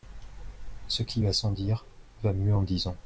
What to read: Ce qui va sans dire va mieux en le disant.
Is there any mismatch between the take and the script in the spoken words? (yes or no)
no